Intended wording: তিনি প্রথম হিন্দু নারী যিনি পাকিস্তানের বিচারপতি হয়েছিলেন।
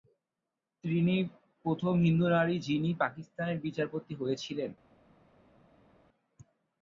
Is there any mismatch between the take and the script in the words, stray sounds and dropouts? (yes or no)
no